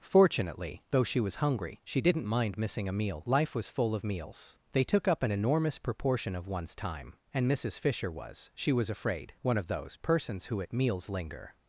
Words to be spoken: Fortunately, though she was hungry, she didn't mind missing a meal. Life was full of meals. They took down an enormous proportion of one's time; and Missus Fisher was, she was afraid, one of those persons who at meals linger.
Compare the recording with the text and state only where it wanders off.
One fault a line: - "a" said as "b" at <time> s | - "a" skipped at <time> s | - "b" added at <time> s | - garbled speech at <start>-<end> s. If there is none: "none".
- "down" said as "up" at 5.1 s